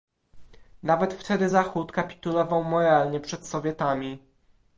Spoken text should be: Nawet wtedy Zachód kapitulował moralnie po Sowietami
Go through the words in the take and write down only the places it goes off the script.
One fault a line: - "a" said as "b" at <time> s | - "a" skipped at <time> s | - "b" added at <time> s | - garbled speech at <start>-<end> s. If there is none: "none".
- "po" said as "przed" at 3.2 s